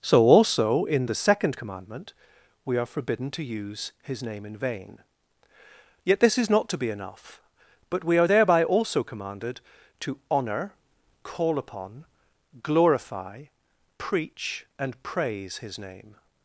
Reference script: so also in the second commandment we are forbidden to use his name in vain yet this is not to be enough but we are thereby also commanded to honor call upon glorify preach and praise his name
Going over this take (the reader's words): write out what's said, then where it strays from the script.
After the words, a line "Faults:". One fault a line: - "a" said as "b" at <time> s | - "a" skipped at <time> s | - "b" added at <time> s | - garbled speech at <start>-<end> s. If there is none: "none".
so also in the second commandment we are forbidden to use his name in vain yet this is not to be enough but we are thereby also commanded to honor call upon glorify preach and praise his name
Faults:
none